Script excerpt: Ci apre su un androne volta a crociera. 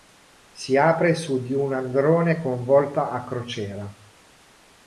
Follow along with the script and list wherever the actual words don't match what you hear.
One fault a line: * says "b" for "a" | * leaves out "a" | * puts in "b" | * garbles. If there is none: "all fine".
* says "Si" for "Ci"
* puts in "di"
* puts in "con"